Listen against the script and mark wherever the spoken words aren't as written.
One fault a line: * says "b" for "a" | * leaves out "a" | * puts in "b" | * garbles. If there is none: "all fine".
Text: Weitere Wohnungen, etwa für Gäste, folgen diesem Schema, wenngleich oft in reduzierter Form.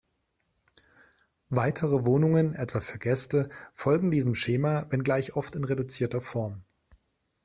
all fine